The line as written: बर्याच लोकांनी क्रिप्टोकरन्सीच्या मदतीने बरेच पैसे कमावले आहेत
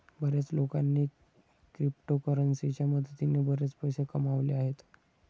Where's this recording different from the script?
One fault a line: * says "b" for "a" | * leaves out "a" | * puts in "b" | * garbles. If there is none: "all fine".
all fine